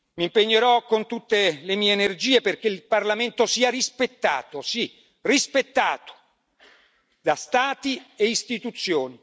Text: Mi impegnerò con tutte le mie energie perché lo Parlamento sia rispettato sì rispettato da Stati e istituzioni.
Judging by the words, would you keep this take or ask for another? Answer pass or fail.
fail